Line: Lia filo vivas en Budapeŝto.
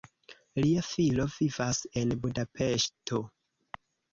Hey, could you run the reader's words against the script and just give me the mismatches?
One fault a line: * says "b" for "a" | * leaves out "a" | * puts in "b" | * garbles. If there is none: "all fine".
all fine